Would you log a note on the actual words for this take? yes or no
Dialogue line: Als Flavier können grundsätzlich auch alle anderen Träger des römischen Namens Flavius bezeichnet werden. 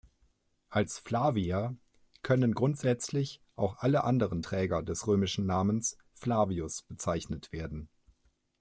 no